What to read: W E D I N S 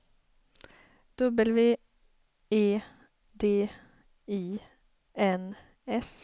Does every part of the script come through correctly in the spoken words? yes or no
yes